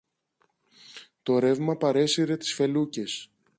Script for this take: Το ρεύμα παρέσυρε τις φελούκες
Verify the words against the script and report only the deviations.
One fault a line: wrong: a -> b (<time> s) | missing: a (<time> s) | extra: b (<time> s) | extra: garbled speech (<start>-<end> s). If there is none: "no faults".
no faults